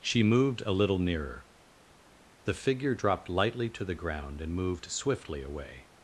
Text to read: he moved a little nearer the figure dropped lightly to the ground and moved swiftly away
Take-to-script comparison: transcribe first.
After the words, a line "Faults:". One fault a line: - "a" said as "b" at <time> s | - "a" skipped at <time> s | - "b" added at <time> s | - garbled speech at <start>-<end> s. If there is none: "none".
she moved a little nearer the figure dropped lightly to the ground and moved swiftly away
Faults:
- "he" said as "she" at 0.0 s